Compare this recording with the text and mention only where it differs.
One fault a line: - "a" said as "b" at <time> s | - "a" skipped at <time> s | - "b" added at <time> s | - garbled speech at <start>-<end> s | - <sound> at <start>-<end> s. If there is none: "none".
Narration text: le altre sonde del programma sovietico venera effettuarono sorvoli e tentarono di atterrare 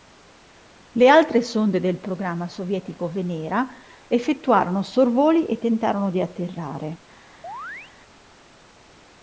- chirp at 7.4-7.9 s